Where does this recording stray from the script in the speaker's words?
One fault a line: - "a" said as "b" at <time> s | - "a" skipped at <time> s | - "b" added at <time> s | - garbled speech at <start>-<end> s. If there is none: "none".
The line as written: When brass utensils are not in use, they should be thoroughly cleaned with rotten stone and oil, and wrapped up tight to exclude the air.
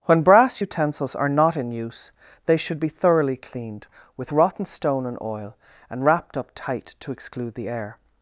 none